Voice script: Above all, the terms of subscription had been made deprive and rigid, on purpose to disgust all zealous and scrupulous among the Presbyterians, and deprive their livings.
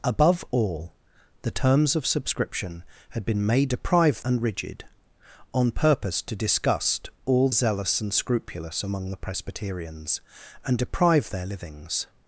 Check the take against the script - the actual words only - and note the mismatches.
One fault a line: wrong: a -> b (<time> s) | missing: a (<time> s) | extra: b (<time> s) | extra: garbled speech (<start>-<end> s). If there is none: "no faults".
no faults